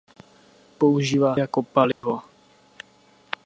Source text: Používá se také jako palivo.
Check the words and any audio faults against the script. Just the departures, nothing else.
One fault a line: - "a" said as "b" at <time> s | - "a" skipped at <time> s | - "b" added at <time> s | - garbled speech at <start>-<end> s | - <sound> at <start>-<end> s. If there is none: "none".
- "se také" skipped at 1.4 s
- dropout at 1.9-2.0 s